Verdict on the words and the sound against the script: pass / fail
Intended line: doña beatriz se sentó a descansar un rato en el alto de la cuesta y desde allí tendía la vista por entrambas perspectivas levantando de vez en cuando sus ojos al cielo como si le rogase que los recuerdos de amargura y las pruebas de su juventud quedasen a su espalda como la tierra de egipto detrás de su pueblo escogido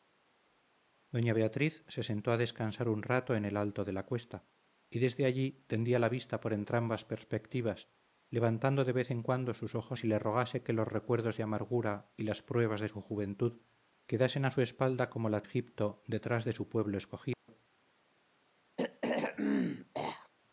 fail